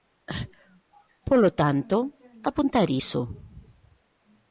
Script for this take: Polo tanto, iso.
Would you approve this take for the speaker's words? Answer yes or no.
no